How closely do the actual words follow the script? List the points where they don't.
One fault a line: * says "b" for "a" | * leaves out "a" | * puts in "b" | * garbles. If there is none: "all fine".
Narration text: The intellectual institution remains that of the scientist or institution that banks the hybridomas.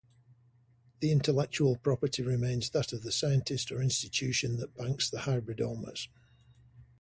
* says "property" for "institution"